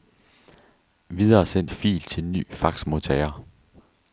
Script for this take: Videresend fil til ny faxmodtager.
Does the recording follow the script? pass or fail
pass